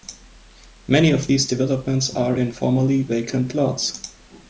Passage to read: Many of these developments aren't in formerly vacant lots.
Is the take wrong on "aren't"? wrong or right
wrong